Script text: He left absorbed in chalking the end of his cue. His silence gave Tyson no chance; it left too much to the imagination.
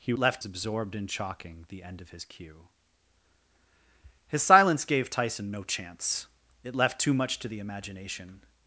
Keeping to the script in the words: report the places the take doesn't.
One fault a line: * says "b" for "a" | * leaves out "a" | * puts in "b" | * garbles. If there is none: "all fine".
all fine